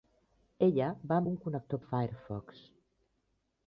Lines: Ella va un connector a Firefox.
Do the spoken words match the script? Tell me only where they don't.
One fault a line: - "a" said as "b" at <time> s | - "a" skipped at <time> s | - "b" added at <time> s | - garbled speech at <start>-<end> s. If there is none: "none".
none